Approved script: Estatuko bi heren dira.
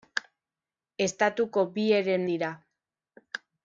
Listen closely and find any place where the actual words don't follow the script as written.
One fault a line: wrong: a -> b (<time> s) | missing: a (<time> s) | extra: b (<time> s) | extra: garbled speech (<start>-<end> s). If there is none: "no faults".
no faults